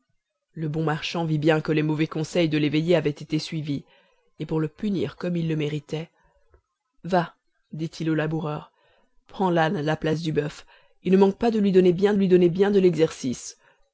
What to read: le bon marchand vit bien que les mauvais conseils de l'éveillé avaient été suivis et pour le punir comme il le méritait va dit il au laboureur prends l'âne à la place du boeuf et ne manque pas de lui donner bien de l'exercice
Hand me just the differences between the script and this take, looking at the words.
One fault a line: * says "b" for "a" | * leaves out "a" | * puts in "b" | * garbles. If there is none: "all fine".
* puts in "lui donner bien"